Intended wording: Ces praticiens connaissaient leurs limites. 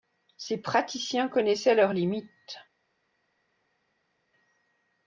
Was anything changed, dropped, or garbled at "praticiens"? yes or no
no